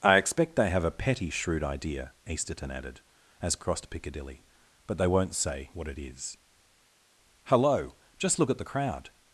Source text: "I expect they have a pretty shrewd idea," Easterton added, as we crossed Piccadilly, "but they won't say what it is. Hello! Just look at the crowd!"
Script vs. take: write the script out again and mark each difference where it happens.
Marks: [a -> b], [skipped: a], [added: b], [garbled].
"I expect they have a [pretty -> petty] shrewd idea," Easterton added, as [skipped: we] crossed Piccadilly, "but they won't say what it is. Hello! Just look at the crowd!"